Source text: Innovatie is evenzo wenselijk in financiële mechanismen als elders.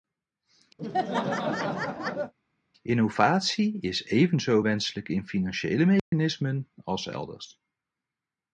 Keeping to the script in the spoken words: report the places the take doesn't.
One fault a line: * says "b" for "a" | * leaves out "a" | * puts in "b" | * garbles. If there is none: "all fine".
all fine